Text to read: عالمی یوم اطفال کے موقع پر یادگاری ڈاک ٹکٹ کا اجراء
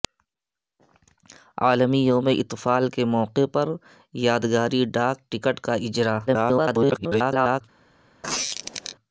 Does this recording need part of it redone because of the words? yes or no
yes